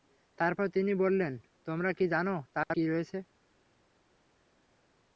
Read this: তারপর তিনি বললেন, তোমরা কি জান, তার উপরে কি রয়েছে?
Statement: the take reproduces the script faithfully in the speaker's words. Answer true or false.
false